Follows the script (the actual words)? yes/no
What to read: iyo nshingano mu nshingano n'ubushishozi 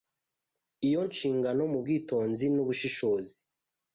no